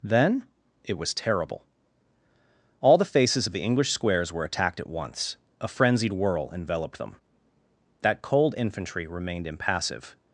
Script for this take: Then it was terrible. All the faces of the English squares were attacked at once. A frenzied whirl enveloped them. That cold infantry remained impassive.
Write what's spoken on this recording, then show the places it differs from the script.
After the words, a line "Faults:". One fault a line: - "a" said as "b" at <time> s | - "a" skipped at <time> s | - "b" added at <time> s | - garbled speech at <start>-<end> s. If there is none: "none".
Then it was terrible. All the faces of the English squares were attacked at once. A frenzied whirl enveloped them. That cold infantry remained impassive.
Faults:
none